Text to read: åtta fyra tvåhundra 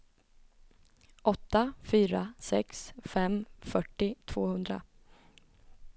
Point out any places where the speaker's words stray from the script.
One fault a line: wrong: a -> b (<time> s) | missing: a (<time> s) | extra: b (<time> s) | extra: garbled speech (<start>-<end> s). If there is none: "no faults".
extra: sex fem fyrtio (2.4 s)